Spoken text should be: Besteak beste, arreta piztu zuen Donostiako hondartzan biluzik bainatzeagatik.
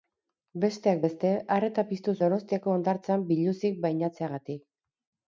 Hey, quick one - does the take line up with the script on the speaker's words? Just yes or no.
no